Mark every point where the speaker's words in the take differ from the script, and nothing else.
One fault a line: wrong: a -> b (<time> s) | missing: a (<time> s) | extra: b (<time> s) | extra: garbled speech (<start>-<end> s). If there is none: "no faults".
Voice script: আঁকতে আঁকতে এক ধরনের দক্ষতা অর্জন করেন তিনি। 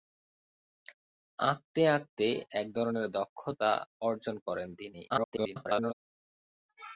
extra: garbled speech (5.1-5.9 s)